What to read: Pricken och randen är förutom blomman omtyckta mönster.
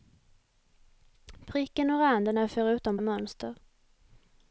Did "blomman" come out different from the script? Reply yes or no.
yes